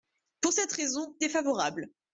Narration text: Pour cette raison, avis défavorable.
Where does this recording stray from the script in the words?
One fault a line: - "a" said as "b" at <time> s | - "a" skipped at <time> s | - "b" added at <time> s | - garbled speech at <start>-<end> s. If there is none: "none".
- "avis" skipped at 1.2 s